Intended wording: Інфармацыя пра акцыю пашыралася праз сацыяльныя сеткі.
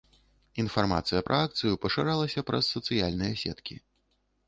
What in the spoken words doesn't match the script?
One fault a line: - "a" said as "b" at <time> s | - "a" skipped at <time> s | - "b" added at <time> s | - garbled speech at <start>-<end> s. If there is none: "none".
none